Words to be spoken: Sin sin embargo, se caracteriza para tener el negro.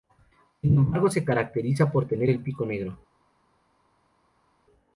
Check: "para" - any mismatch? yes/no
yes